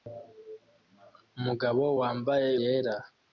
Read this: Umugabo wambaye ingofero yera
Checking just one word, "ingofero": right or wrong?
wrong